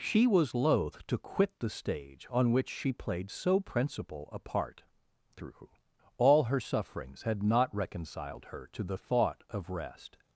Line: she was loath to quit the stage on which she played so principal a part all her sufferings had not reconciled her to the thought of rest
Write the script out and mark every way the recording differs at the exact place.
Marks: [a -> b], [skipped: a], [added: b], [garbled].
she was loath to quit the stage on which she played so principal a part [added: through] all her sufferings had not reconciled her to the thought of rest